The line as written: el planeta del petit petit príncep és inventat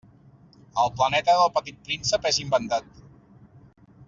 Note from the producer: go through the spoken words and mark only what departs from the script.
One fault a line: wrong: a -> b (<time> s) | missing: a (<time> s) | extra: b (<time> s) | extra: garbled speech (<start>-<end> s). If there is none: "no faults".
missing: petit (1.8 s)